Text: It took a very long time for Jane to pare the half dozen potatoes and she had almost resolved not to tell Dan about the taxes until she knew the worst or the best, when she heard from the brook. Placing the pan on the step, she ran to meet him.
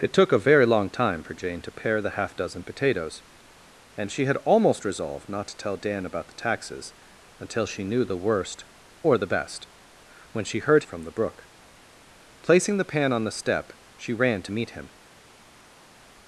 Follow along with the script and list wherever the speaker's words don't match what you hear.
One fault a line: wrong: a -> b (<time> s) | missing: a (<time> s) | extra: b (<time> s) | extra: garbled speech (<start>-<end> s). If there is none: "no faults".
no faults